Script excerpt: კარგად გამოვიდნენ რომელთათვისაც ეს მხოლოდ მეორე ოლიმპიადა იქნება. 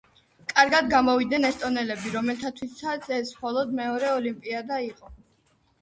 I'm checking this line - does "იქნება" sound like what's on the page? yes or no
no